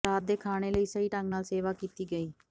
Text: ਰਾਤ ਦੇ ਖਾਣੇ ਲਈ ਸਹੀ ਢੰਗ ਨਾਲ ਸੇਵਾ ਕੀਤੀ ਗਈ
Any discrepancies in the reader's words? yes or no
no